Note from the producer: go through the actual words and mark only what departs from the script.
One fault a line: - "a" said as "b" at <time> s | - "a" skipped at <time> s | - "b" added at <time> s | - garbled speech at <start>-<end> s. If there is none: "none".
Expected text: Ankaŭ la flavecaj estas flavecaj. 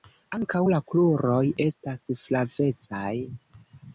- "flavecaj" said as "kruroj" at 0.9 s